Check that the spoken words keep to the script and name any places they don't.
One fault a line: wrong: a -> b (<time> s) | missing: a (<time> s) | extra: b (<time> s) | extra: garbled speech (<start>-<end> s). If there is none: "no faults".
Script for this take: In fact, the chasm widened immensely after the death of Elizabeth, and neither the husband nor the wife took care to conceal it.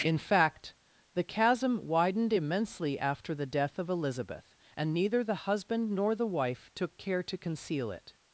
no faults